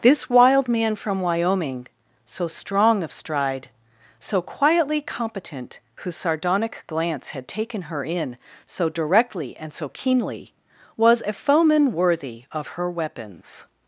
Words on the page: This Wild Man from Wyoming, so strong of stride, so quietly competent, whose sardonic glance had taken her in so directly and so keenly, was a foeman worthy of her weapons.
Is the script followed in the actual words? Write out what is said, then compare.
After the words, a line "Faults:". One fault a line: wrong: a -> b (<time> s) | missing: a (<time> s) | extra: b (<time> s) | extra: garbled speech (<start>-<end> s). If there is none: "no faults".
This Wild Man from Wyoming, so strong of stride, so quietly competent, whose sardonic glance had taken her in so directly and so keenly, was a foeman worthy of her weapons.
Faults:
no faults